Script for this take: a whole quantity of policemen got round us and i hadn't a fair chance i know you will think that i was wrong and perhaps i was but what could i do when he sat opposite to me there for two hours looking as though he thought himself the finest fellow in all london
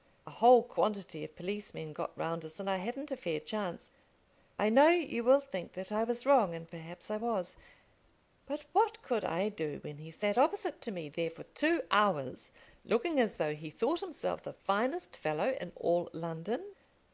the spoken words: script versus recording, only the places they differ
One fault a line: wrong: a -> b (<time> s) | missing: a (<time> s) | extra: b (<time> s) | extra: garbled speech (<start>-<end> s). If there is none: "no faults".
no faults